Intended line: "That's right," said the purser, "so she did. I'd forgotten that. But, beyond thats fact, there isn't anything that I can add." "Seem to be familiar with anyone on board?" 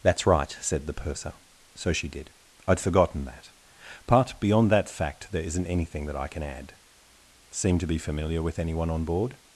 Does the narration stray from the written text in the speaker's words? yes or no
yes